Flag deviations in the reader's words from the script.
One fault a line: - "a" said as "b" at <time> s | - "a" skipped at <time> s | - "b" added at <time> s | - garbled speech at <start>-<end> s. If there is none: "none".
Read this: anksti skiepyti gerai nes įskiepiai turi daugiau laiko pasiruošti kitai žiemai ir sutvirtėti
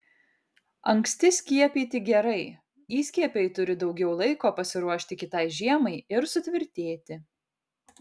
- "nes" skipped at 2.4 s